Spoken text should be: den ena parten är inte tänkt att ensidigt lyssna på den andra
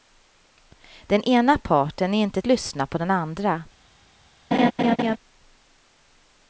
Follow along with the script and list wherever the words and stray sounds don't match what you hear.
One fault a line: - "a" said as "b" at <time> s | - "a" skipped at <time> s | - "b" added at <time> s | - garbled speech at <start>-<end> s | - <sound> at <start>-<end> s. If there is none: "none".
- "tänkt att ensidigt" skipped at 2.4 s
- laugh at 4.5-5.2 s